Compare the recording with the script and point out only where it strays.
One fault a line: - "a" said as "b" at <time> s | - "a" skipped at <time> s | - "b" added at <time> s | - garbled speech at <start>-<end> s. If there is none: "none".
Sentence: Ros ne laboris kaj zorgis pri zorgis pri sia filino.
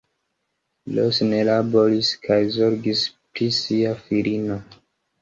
- "zorgis pri" skipped at 3.5 s